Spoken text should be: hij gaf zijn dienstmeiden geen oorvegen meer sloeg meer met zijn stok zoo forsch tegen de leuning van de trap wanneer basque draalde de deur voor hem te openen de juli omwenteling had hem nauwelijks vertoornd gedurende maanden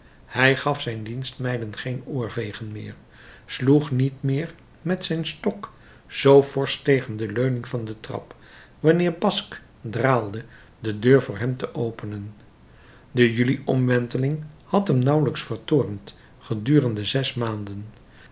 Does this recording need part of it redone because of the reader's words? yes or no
yes